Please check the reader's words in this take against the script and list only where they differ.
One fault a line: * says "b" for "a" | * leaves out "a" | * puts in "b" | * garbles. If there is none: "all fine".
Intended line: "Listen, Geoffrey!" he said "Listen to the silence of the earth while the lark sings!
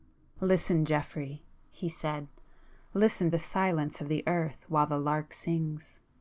* leaves out "to"